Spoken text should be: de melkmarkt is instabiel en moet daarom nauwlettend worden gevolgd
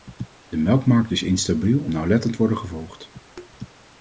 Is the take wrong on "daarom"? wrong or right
wrong